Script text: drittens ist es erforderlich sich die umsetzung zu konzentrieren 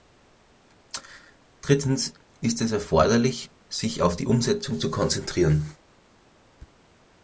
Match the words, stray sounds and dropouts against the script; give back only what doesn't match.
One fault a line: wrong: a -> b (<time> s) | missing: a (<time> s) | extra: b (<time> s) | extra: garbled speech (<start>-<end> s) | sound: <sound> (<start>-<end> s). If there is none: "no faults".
extra: auf (4.0 s)